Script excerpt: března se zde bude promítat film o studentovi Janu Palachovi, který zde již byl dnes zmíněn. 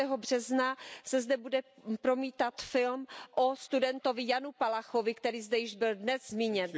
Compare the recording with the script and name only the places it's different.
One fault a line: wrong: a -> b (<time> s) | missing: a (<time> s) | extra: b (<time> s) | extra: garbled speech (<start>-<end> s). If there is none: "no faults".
no faults